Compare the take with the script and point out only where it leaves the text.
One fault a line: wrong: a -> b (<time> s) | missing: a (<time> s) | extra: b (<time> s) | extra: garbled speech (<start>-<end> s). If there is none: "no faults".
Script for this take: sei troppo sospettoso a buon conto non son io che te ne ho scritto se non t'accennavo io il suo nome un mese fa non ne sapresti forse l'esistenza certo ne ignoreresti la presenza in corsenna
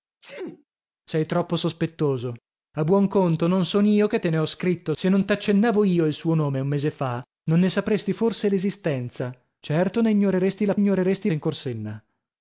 wrong: presenza -> ignoreresti (10.7 s)